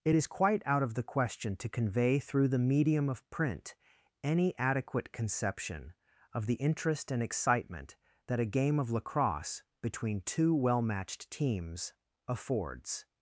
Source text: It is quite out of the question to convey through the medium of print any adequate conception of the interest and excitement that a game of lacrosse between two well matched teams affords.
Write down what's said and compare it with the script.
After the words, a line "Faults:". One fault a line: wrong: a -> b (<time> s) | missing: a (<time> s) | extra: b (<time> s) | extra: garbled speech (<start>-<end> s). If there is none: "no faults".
It is quite out of the question to convey through the medium of print any adequate conception of the interest and excitement that a game of lacrosse between two well matched teams affords.
Faults:
no faults